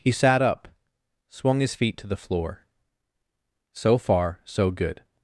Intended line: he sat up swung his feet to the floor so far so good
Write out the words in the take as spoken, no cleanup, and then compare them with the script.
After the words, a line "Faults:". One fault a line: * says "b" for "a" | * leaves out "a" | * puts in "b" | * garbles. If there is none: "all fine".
he sat up swung his feet to the floor so far so good
Faults:
all fine